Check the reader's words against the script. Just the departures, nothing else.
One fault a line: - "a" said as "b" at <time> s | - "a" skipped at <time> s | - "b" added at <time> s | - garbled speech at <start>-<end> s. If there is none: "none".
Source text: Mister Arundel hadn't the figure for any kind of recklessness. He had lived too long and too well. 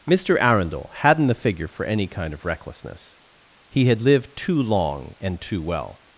none